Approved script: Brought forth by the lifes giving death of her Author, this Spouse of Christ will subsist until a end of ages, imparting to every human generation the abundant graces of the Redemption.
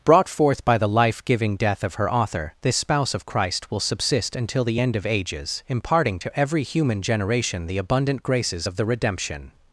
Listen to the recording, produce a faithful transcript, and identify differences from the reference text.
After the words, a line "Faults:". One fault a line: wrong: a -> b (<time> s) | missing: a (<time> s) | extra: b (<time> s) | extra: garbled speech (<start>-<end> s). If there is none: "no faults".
Brought forth by the life giving death of her Author, this Spouse of Christ will subsist until the end of ages, imparting to every human generation the abundant graces of the Redemption.
Faults:
wrong: lifes -> life (0.9 s)
wrong: a -> the (4.6 s)